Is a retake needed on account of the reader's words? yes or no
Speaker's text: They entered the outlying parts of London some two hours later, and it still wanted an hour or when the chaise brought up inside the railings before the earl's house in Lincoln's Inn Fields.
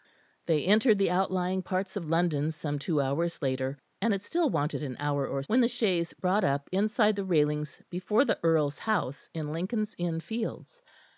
no